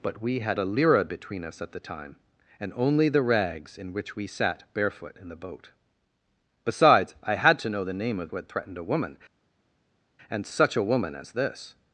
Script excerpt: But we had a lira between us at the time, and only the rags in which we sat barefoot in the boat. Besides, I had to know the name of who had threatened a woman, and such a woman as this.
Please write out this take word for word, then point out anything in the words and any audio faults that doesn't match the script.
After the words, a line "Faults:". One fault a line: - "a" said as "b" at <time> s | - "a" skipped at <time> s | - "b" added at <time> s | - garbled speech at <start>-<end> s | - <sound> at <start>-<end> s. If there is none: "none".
But we had a lira between us at the time, and only the rags in which we sat barefoot in the boat. Besides, I had to know the name of who had threatened a woman, and such a woman as this.
Faults:
none